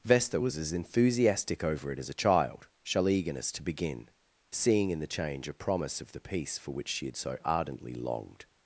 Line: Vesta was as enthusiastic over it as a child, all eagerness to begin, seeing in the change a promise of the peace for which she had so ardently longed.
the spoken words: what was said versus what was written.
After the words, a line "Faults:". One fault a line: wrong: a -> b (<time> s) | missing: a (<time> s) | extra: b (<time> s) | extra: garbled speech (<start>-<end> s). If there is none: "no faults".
Vesta was as enthusiastic over it as a child, shall eagerness to begin, seeing in the change a promise of the peace for which she had so ardently longed.
Faults:
wrong: all -> shall (2.8 s)